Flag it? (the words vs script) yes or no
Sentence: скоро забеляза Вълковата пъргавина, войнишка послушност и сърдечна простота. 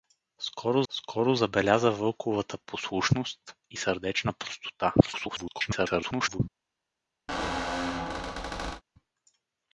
yes